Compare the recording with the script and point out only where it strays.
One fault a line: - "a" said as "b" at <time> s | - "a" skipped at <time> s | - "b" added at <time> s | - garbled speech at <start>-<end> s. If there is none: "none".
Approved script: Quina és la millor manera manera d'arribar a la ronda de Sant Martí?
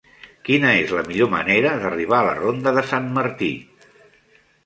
- "manera" skipped at 1.7 s